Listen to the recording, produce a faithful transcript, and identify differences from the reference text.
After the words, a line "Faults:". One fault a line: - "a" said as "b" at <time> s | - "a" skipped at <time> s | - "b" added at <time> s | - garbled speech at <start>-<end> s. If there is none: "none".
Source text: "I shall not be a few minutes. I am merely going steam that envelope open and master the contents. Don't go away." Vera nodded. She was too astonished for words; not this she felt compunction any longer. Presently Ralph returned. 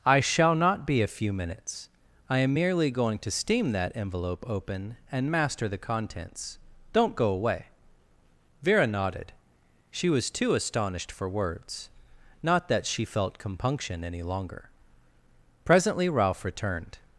"I shall not be a few minutes. I am merely going to steam that envelope open and master the contents. Don't go away." Vera nodded. She was too astonished for words; not that she felt compunction any longer. Presently Ralph returned.
Faults:
- "to" added at 3.2 s
- "this" said as "that" at 12.7 s